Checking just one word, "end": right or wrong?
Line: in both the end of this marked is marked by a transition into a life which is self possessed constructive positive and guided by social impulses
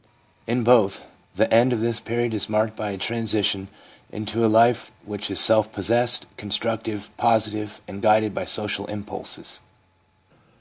right